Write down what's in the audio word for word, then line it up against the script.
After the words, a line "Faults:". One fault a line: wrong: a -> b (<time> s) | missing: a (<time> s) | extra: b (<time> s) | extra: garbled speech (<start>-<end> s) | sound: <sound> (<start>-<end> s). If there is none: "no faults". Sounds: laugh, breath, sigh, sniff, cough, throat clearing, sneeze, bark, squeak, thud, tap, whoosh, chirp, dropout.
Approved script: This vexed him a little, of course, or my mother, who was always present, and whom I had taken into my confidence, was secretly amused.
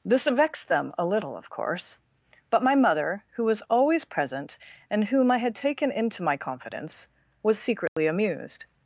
This vexed them a little, of course, but my mother, who was always present, and whom I had taken into my confidence, was secretly amused.
Faults:
wrong: him -> them (0.7 s)
wrong: or -> but (2.5 s)
sound: dropout (7.9-8.0 s)